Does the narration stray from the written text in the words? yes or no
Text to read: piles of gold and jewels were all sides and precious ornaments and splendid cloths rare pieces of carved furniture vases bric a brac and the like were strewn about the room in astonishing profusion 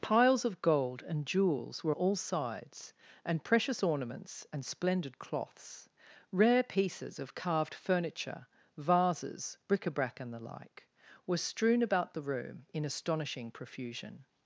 no